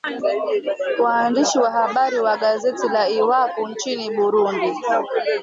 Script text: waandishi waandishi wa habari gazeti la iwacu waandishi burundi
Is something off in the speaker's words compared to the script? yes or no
yes